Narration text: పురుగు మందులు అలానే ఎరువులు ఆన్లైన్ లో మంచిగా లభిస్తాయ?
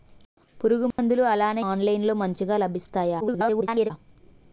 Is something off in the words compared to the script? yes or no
yes